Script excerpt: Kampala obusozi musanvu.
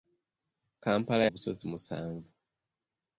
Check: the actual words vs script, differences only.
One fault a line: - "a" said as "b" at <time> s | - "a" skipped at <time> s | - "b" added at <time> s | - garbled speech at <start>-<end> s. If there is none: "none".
none